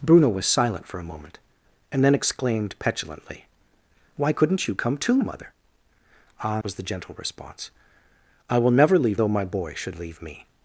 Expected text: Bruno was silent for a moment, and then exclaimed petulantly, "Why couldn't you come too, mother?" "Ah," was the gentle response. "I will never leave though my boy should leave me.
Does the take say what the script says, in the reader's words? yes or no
yes